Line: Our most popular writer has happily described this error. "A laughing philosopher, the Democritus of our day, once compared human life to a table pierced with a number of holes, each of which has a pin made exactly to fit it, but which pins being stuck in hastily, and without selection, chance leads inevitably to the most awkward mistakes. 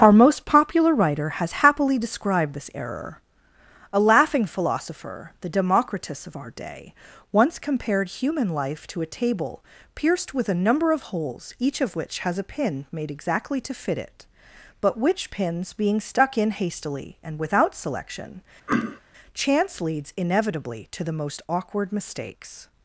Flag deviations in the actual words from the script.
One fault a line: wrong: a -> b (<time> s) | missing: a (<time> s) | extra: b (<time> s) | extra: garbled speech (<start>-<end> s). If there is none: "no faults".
no faults